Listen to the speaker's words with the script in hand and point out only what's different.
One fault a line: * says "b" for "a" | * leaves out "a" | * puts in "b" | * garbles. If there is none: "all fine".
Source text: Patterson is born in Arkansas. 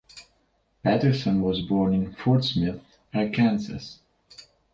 * says "was" for "is"
* puts in "Fort Smith"